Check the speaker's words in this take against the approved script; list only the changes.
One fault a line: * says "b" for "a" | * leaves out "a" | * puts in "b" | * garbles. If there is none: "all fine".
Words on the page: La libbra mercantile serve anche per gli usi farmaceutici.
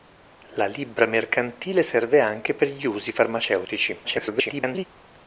* garbles